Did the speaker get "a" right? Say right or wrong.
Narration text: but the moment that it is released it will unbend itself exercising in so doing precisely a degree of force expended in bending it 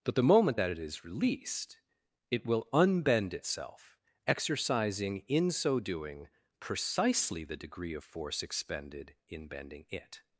wrong